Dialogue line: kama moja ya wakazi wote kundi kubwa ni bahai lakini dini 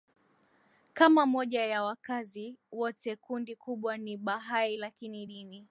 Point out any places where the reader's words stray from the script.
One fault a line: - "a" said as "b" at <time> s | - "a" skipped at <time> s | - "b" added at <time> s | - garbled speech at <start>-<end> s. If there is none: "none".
none